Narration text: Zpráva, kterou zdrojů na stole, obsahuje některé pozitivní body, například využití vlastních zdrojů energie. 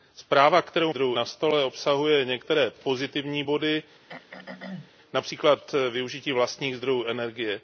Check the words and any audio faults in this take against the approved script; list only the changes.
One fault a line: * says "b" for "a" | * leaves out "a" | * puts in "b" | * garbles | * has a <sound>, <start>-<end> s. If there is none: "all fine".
* has a throat clearing, 4.1-4.9 s